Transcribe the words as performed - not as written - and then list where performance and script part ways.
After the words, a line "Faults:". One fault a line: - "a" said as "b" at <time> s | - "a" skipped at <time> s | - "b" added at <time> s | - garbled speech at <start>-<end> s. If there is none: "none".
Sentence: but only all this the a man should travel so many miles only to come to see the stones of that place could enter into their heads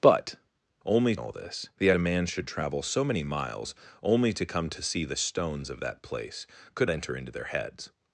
but only all this the a man should travel so many miles only to come to see the stones of that place could enter into their heads
Faults:
none